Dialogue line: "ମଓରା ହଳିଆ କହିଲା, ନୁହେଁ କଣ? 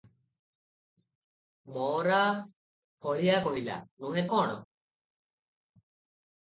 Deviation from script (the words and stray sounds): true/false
false